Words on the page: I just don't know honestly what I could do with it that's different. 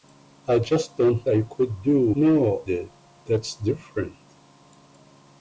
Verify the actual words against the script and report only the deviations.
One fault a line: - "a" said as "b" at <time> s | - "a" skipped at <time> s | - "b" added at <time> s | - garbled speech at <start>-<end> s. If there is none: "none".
- "know honestly what" skipped at 1.3 s
- "with" said as "know" at 2.2 s